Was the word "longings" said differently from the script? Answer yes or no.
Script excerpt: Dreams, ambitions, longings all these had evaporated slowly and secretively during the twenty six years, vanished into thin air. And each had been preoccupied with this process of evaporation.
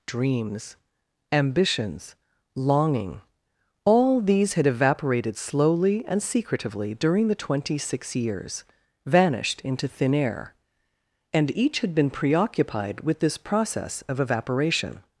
yes